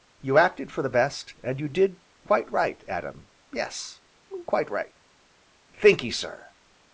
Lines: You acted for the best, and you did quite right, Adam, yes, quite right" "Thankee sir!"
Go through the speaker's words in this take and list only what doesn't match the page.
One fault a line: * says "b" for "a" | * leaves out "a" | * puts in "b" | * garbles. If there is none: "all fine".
all fine